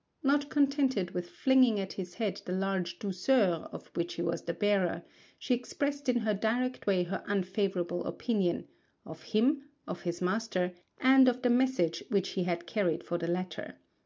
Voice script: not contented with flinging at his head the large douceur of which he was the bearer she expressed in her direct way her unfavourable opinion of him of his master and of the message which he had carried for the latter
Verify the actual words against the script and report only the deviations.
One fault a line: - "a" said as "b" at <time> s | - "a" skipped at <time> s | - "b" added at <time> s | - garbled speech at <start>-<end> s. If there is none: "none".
none